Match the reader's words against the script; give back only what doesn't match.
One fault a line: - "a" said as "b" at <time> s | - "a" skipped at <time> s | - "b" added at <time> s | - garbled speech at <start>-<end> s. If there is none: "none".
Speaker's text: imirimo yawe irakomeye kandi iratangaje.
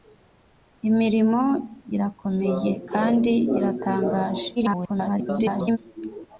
- "yawe" skipped at 1.4 s
- garbled speech at 4.6-5.8 s